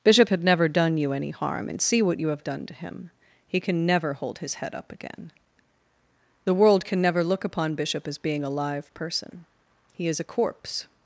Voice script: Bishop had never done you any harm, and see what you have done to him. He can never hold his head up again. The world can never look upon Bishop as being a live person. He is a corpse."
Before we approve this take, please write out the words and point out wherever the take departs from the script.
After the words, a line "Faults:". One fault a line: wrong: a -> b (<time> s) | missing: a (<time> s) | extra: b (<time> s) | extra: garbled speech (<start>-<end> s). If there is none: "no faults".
Bishop had never done you any harm, and see what you have done to him. He can never hold his head up again. The world can never look upon Bishop as being a live person. He is a corpse."
Faults:
no faults